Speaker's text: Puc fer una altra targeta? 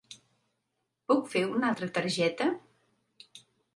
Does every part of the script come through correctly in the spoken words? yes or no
yes